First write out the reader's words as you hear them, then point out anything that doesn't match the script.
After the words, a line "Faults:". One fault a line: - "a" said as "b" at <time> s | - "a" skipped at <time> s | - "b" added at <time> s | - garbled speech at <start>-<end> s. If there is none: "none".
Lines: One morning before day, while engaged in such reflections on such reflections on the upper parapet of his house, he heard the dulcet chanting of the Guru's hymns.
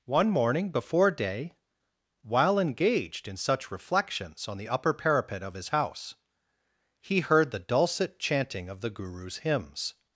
One morning before day, while engaged in such reflections on the upper parapet of his house, he heard the dulcet chanting of the Guru's hymns.
Faults:
- "such reflections on" skipped at 4.6 s